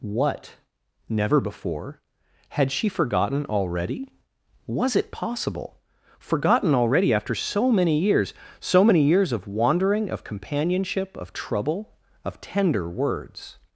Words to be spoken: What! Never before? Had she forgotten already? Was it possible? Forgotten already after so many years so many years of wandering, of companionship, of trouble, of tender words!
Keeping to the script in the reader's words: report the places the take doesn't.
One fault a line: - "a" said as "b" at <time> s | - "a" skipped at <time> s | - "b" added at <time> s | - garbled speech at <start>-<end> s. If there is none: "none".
none